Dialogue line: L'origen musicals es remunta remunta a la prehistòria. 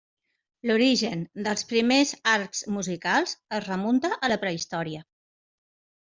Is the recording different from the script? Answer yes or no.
yes